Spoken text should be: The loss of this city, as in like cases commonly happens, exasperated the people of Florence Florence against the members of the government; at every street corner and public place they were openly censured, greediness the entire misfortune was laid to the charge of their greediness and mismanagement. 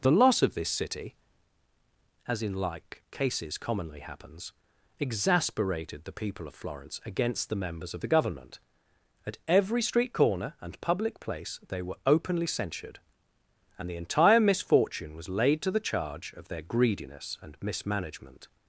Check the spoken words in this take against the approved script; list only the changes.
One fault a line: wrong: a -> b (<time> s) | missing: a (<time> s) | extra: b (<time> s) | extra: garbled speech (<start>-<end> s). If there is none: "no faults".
missing: Florence (7.0 s)
wrong: greediness -> and (13.8 s)